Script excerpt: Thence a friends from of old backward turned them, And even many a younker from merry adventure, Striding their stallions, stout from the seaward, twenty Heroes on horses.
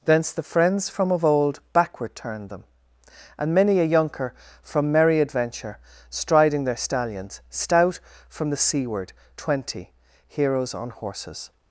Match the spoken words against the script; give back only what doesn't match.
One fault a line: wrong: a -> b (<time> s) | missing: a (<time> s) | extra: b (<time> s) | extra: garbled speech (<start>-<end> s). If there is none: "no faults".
wrong: a -> the (0.3 s)
missing: even (3.5 s)